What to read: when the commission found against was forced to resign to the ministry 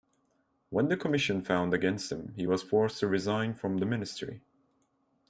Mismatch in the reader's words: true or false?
true